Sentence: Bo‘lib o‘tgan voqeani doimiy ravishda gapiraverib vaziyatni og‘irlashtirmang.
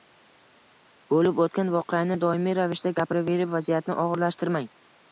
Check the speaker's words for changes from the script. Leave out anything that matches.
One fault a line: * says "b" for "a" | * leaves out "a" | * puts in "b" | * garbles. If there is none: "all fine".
all fine